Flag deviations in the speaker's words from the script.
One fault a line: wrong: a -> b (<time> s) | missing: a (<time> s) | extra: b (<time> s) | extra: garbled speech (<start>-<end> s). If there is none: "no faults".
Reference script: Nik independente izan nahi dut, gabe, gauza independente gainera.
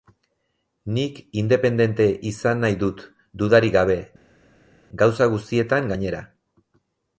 extra: dudarik (3.4 s)
wrong: independente -> guztietan (5.4 s)